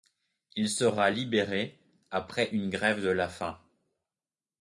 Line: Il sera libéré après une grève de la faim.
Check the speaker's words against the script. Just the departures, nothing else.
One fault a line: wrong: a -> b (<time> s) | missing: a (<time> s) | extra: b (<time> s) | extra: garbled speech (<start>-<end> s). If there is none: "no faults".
no faults